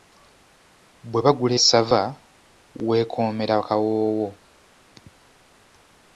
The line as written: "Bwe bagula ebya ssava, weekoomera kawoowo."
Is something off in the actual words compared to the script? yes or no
yes